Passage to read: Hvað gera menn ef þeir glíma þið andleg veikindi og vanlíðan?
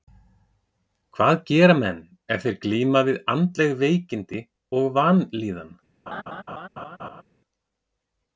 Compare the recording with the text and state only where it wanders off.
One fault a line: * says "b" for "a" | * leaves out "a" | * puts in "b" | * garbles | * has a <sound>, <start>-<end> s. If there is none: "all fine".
* says "við" for "þið"
* has a laugh, 6.1-7.2 s